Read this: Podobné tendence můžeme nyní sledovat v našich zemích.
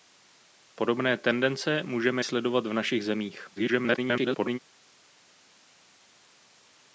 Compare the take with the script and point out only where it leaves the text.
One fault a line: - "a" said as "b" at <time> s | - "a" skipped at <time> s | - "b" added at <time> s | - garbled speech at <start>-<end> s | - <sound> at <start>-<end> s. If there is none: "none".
- "nyní" skipped at 2.2 s
- garbled speech at 3.6-4.6 s